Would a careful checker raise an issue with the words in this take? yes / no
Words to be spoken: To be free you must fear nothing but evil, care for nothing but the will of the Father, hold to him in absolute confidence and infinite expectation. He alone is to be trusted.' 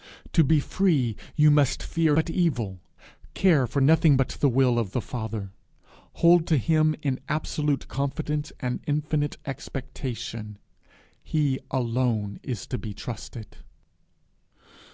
yes